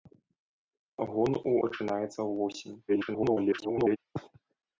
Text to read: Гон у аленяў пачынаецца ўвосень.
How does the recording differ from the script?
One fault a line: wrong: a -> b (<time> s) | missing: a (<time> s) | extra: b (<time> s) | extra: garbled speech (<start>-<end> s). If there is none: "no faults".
missing: аленяў (1.5 s)
extra: garbled speech (2.9-4.0 s)